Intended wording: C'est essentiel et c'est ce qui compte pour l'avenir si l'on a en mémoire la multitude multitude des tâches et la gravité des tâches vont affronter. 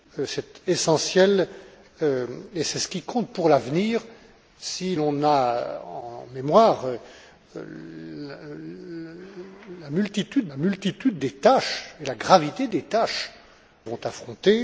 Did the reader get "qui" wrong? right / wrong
right